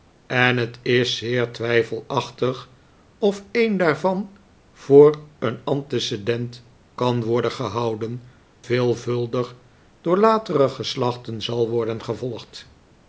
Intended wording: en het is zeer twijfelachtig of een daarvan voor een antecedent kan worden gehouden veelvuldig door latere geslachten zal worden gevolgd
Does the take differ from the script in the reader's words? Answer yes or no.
no